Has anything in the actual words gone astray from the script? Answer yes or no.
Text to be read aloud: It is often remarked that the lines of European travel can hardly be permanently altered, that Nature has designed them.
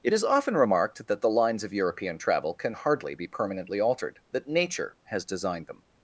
no